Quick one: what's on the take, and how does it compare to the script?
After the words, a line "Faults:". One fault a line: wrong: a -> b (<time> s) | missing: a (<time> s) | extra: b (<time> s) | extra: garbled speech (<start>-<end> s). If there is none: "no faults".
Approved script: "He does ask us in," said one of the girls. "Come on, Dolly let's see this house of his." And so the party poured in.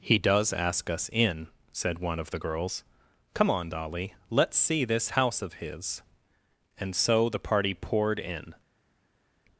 "He does ask us in," said one of the girls. "Come on, Dolly let's see this house of his." And so the party poured in.
Faults:
no faults